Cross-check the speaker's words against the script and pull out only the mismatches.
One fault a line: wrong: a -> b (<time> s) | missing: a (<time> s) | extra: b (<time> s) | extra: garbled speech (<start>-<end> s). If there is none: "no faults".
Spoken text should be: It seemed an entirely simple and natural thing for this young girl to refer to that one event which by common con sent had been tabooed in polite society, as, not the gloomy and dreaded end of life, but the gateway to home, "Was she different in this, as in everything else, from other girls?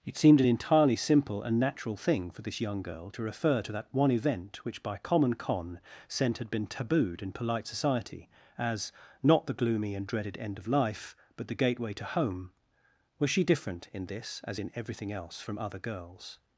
no faults